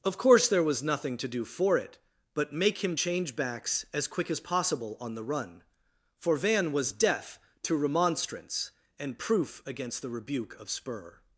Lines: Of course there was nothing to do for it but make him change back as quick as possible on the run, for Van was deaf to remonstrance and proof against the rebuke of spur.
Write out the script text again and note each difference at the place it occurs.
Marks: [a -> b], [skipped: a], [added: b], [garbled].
Of course there was nothing to do for it but make him change [back -> backs] as quick as possible on the run, for Van was deaf to remonstrance and proof against the rebuke of spur.